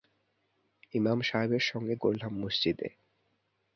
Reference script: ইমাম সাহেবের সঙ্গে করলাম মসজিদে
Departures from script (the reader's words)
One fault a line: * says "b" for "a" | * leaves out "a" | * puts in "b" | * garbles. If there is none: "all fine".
all fine